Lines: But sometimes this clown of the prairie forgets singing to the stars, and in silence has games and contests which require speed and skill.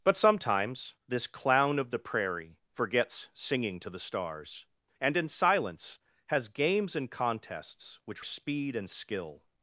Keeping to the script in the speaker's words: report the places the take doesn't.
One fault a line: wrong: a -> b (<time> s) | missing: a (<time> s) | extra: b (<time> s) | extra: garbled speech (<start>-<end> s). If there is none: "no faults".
missing: require (8.2 s)